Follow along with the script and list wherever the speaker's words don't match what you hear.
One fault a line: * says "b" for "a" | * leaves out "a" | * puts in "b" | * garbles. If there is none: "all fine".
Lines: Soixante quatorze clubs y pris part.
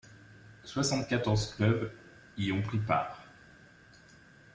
* puts in "ont"